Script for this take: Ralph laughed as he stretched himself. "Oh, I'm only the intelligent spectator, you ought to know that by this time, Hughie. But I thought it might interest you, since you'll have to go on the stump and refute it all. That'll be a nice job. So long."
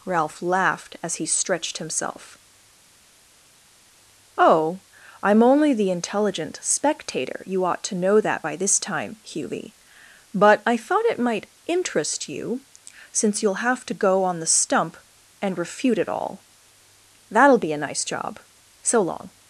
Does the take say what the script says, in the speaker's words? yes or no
yes